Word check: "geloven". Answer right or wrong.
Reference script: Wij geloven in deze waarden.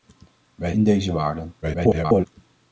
wrong